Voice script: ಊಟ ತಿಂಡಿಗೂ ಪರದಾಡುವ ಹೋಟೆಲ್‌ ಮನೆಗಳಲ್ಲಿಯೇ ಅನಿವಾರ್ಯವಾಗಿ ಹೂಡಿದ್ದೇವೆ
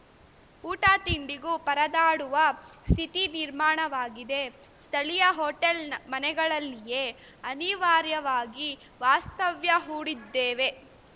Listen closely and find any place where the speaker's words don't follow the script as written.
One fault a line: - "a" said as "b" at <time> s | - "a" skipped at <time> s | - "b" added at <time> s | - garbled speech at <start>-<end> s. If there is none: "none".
- "ಸ್ಥಿತಿ ನಿರ್ಮಾಣವಾಗಿದೆ ಸ್ಥಳೀಯ" added at 2.9 s
- "ವಾಸ್ತವ್ಯ" added at 9.0 s